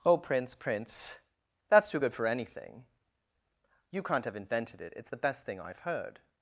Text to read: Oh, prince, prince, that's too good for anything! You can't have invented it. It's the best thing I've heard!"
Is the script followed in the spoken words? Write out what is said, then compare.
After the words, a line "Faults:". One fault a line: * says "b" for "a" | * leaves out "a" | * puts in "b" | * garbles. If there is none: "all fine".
Oh, prince, prince, that's too good for anything! You can't have invented it. It's the best thing I've heard!"
Faults:
all fine